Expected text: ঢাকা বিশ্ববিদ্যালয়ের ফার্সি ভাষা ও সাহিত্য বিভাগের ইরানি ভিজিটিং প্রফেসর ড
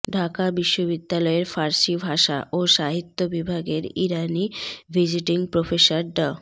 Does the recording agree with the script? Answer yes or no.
yes